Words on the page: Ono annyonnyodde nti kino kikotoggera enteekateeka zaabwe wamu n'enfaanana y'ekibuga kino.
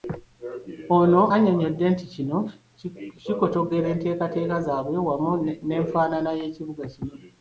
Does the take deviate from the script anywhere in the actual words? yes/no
no